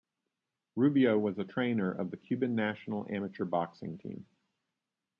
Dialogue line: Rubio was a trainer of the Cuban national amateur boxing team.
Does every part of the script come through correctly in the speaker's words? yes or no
yes